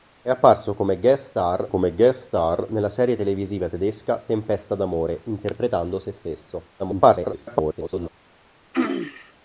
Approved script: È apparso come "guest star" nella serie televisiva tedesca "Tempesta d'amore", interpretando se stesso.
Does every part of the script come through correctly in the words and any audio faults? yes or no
no